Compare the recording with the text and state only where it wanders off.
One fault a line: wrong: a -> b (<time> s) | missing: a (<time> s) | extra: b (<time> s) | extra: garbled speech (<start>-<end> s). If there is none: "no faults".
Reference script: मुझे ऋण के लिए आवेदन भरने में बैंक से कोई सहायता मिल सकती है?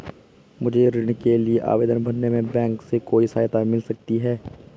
no faults